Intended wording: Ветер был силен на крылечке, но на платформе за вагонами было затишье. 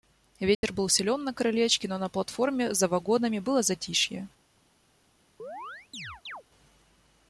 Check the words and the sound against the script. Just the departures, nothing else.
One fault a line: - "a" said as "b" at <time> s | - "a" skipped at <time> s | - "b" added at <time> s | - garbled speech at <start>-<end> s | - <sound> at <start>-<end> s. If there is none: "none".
- dropout at 0.5-0.6 s
- chirp at 5.4-6.4 s